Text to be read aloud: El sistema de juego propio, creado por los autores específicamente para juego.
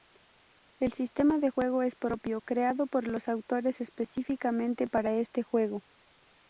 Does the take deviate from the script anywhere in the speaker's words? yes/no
yes